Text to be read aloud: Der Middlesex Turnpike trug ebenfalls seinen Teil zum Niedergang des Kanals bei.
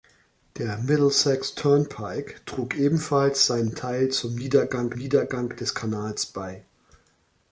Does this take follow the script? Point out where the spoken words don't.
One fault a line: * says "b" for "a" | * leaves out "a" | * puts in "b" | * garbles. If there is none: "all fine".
* puts in "Niedergang"